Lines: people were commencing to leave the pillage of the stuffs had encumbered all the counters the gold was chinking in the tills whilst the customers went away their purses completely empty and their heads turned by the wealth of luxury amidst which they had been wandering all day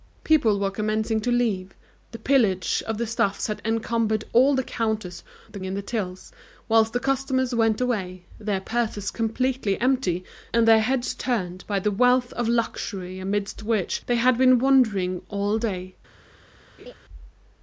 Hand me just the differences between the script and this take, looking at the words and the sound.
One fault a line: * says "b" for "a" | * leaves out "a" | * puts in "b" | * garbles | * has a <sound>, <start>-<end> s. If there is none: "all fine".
* leaves out "gold was chinking"
* has a laugh, 16.8-16.9 s